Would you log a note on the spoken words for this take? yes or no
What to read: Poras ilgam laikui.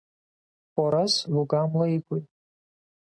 no